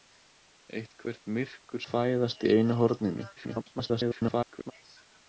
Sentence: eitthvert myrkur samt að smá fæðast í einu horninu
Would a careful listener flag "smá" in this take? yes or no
yes